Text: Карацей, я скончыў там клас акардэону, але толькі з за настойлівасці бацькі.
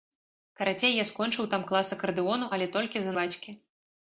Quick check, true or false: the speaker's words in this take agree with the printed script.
false